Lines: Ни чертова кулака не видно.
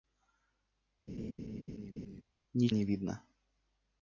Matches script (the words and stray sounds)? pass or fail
fail